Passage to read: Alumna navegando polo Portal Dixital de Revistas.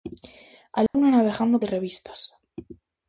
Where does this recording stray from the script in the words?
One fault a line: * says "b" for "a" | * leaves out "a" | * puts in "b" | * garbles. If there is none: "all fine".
* leaves out "polo Portal Dixital"